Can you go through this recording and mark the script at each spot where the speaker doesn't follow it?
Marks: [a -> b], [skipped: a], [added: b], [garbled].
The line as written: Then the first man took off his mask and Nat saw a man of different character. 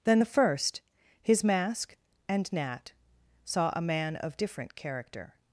Then the first [skipped: man took off] his mask and Nat saw a man of different character.